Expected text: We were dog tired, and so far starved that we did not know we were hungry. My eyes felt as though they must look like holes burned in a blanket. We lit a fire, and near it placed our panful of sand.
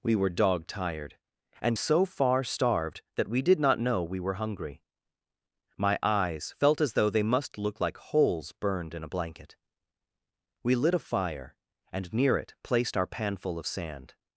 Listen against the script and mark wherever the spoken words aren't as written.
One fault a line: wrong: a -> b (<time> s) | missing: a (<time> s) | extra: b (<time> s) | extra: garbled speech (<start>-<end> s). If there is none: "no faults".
no faults